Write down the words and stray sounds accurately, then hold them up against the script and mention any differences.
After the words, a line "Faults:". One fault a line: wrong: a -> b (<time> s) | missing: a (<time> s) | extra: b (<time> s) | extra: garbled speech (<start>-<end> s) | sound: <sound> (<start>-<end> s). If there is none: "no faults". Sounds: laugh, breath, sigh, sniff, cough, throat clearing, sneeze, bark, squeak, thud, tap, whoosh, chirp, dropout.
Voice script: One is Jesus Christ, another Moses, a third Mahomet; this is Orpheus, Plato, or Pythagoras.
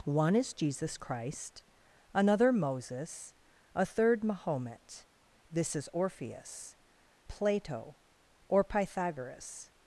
One is Jesus Christ, another Moses, a third Mahomet; this is Orpheus, Plato, or Pythagoras.
Faults:
no faults